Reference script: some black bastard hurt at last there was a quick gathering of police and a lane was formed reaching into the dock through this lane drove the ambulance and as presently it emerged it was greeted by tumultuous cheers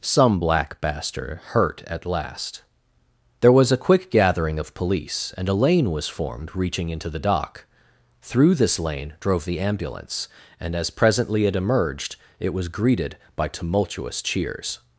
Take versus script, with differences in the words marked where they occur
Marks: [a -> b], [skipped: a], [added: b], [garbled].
some black bastard hurt at last there was a quick gathering of police and a lane was formed reaching into the dock through this lane drove the ambulance and as presently it emerged it was greeted by tumultuous cheers